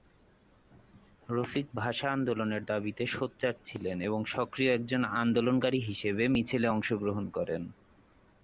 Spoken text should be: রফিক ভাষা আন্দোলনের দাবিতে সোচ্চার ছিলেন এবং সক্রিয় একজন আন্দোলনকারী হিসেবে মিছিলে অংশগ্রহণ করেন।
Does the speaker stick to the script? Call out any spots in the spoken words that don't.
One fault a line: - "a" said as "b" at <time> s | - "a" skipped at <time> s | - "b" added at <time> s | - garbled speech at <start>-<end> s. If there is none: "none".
none